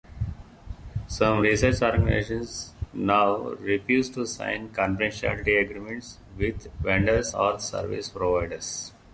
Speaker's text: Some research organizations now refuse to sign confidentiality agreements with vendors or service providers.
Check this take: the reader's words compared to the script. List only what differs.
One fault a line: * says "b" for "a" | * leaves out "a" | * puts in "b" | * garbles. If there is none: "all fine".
all fine